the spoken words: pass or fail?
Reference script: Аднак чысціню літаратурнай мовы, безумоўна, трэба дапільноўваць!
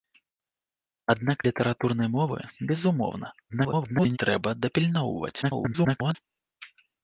fail